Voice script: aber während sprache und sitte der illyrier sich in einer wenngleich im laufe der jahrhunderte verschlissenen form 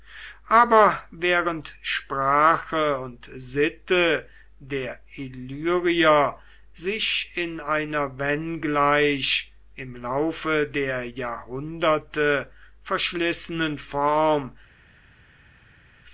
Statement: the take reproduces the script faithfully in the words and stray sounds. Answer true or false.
true